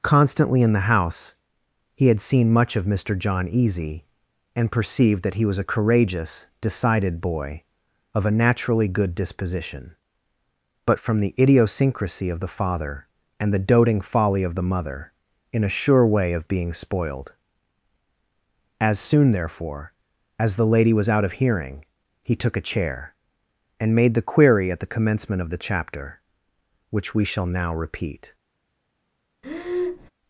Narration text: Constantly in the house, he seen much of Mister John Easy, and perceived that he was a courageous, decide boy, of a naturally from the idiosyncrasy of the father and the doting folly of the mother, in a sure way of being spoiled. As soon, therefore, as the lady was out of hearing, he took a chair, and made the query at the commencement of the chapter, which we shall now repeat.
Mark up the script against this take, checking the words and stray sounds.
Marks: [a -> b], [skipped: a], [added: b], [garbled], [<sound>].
Constantly in the house, he [added: had] seen much of Mister John Easy, and perceived that he was a courageous, [decide -> decided] boy, of a naturally [added: good disposition but] from the idiosyncrasy of the father and the doting folly of the mother, in a sure way of being spoiled. As soon, therefore, as the lady was out of hearing, he took a chair, and made the query at the commencement of the chapter, which we shall now repeat. [breath]